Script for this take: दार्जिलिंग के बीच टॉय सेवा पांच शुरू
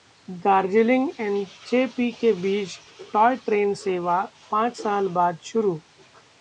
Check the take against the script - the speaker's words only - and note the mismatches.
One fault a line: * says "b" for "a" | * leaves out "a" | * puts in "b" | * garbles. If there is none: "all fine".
* puts in "एनजेपी"
* puts in "ट्रेन"
* puts in "साल बाद"